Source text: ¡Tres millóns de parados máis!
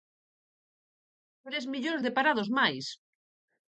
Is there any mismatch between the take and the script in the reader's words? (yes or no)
no